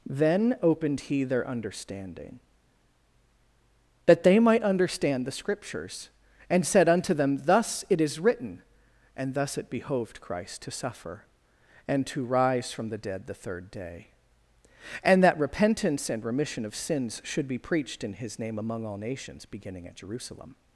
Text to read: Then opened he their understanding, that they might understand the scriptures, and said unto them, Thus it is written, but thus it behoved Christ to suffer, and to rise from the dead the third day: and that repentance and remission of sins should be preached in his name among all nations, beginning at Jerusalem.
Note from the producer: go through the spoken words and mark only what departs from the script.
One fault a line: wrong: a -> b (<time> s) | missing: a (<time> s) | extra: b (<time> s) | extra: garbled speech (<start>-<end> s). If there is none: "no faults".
wrong: but -> and (9.2 s)